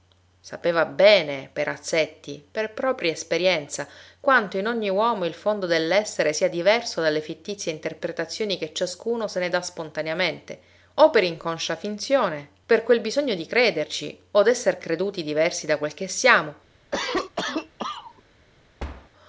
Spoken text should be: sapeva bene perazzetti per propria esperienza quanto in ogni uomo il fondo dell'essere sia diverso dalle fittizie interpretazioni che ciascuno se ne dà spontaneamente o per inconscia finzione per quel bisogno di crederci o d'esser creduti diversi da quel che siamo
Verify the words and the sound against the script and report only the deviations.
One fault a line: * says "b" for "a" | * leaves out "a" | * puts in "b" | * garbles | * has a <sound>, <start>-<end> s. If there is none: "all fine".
* has a cough, 16.9-18.2 s
* has a thud, 18.8-19.1 s